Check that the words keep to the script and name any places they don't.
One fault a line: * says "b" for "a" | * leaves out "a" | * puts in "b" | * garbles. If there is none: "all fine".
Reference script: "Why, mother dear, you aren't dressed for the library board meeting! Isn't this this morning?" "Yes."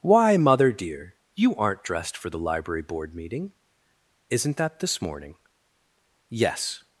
* says "that" for "this"